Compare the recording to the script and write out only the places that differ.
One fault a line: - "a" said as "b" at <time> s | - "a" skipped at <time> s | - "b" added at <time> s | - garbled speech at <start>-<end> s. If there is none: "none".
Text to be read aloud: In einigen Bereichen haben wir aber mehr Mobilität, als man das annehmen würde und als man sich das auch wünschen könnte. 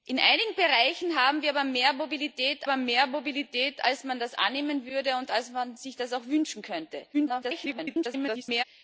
- "aber mehr Mobilität" added at 2.6 s
- garbled speech at 7.1-8.6 s